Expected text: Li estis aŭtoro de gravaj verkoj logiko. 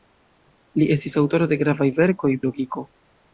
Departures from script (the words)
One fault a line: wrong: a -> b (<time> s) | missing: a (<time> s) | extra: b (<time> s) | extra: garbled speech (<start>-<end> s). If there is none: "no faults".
no faults